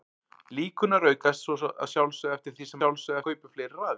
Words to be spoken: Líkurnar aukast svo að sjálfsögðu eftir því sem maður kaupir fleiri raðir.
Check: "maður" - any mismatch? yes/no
yes